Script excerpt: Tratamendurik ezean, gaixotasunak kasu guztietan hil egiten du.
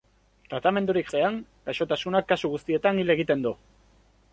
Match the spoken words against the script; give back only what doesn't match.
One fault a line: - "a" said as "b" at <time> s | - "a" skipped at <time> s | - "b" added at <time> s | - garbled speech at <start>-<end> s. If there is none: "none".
none